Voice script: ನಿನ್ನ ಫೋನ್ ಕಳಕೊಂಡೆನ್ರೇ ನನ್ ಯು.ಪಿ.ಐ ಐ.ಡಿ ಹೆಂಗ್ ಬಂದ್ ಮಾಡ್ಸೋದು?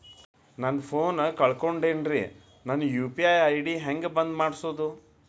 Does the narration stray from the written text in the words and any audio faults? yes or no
yes